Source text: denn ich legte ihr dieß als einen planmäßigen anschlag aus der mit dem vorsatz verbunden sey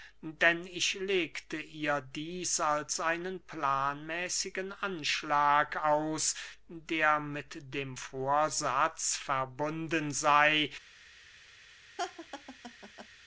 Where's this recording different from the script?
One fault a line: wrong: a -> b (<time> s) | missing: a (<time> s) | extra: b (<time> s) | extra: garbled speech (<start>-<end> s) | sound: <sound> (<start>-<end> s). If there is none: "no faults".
sound: laugh (12.0-13.1 s)